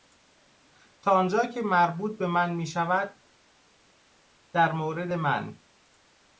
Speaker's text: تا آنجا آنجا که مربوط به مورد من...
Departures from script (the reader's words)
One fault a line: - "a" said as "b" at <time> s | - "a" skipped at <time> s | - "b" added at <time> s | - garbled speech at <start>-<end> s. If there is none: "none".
- "آنجا" skipped at 1.4 s
- "من میشود در" added at 2.3 s